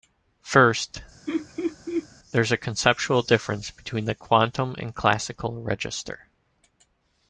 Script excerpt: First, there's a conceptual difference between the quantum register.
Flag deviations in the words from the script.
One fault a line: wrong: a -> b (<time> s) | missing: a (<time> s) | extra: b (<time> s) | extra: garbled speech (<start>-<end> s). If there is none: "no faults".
extra: and classical (4.8 s)